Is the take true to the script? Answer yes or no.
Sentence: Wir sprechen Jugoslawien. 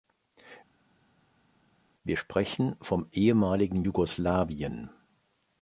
no